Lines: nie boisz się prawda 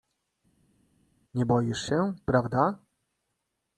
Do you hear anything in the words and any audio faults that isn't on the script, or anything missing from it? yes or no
no